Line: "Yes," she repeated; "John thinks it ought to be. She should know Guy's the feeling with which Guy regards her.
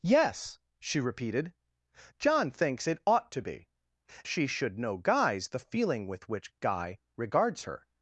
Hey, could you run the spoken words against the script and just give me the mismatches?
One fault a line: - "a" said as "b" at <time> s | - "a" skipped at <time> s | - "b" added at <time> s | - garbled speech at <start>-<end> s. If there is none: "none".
none